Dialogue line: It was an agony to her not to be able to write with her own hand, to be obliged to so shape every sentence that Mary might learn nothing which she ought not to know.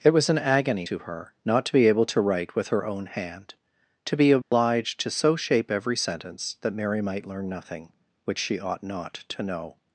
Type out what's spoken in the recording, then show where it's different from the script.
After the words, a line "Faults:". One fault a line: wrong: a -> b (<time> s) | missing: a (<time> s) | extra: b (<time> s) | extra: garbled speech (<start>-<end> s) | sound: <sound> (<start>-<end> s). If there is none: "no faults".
It was an agony to her not to be able to write with her own hand, to be obliged to so shape every sentence that Mary might learn nothing which she ought not to know.
Faults:
sound: dropout (4.4-4.5 s)